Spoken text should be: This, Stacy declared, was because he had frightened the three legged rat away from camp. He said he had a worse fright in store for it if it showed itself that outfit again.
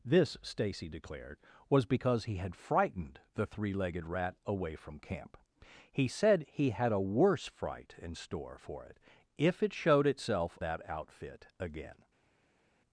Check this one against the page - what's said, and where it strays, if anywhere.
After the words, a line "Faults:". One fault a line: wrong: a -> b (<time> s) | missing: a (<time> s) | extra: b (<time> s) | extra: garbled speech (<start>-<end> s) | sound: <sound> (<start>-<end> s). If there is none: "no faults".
This, Stacy declared, was because he had frightened the three legged rat away from camp. He said he had a worse fright in store for it if it showed itself that outfit again.
Faults:
no faults